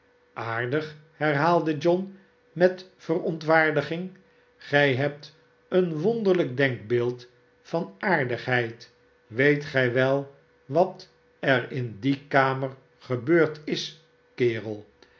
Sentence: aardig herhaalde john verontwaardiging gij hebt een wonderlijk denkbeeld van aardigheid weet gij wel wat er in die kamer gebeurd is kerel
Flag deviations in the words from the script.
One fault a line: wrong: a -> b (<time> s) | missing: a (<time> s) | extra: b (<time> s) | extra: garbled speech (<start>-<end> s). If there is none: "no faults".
extra: met (2.5 s)